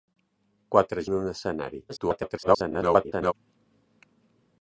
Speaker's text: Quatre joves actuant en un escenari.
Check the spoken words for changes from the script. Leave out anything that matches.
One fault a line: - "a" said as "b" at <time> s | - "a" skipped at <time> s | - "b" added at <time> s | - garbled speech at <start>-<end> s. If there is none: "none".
- "joves actuant" skipped at 1.0 s
- garbled speech at 1.9-3.3 s